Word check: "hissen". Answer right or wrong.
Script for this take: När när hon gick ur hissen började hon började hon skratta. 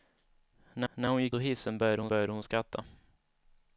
right